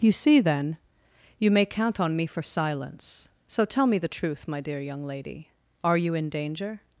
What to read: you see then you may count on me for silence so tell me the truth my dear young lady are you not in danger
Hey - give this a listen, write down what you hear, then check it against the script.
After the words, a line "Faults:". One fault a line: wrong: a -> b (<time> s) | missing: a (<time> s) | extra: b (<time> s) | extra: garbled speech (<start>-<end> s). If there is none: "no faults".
you see then you may count on me for silence so tell me the truth my dear young lady are you in danger
Faults:
missing: not (6.2 s)